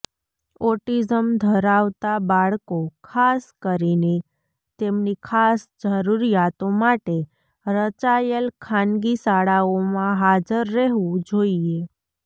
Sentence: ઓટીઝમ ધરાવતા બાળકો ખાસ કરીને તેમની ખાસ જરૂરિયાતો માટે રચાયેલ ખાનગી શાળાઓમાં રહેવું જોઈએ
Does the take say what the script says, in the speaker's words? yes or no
no